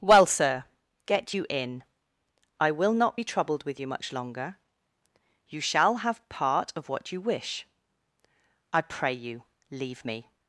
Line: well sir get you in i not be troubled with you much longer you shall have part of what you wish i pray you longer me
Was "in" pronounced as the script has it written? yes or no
yes